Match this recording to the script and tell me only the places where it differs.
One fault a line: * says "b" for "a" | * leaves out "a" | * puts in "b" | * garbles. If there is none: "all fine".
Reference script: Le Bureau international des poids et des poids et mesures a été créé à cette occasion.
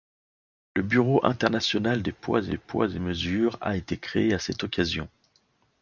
all fine